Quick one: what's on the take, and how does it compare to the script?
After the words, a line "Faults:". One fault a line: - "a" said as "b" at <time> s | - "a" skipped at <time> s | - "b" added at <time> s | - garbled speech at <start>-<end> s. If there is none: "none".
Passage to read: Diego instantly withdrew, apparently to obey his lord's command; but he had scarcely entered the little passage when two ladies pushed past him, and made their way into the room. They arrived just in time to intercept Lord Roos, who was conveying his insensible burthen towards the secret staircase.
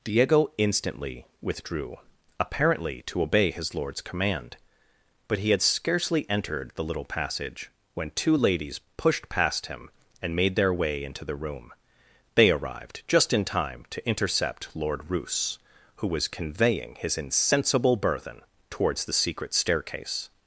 Diego instantly withdrew, apparently to obey his lord's command; but he had scarcely entered the little passage when two ladies pushed past him, and made their way into the room. They arrived just in time to intercept Lord Roos, who was conveying his insensible burthen towards the secret staircase.
Faults:
none